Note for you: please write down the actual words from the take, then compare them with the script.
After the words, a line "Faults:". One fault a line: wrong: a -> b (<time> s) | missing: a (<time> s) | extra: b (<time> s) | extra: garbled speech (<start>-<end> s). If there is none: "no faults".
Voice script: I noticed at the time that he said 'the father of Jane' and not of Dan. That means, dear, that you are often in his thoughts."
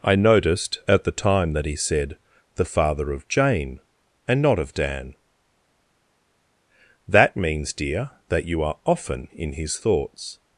I noticed at the time that he said 'the father of Jane' and not of Dan. That means, dear, that you are often in his thoughts."
Faults:
no faults